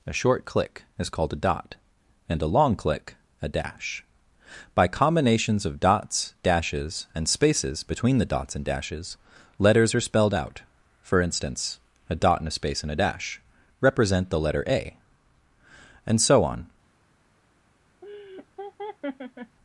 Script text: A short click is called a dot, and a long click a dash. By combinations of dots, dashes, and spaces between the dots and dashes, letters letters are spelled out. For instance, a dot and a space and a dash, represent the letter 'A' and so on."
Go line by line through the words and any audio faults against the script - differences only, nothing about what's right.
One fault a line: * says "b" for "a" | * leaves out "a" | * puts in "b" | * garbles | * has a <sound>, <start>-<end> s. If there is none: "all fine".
* leaves out "letters"
* has a laugh, 18.0-19.6 s